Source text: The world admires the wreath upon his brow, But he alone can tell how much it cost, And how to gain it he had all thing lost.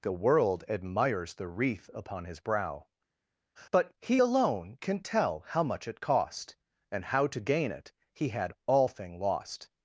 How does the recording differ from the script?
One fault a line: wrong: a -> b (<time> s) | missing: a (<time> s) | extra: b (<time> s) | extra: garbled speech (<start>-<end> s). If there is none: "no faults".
no faults